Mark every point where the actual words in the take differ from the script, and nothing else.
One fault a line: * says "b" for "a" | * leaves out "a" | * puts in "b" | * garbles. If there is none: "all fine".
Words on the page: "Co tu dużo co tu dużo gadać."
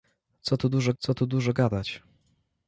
all fine